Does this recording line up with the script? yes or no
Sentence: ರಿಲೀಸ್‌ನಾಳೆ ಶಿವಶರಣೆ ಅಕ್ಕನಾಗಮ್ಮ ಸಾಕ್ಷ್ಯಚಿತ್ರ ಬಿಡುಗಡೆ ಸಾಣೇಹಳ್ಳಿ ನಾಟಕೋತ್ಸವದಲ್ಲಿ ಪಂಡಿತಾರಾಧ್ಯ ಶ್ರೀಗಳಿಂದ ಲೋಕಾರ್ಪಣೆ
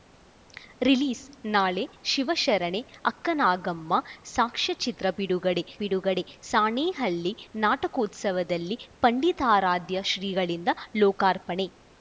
no